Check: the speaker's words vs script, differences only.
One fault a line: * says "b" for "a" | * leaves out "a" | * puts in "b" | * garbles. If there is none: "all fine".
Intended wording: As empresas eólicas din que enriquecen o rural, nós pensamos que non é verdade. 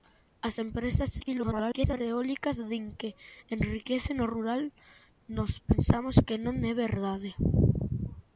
* garbles